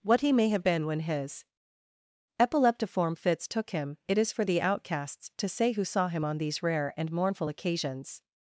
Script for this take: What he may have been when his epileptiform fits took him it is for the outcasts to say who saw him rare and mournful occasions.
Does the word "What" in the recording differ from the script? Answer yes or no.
no